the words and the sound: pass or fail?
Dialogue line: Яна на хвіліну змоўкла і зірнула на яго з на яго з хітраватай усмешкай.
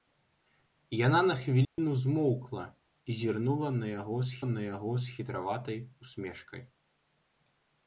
fail